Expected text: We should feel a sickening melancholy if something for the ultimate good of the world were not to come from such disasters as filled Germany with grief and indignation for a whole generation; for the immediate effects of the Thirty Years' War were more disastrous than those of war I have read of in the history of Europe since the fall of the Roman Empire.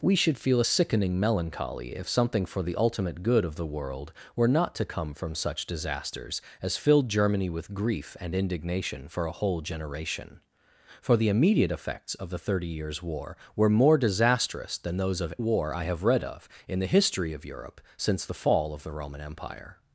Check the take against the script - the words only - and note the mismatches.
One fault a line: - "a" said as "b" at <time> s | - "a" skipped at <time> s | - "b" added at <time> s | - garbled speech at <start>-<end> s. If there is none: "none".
none